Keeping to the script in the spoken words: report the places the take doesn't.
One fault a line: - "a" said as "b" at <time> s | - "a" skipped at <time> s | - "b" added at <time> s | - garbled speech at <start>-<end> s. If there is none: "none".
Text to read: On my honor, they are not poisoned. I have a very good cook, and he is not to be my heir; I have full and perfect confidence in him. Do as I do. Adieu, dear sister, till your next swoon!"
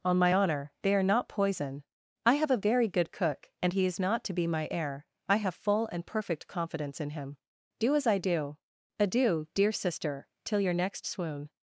- "poisoned" said as "poison" at 1.3 s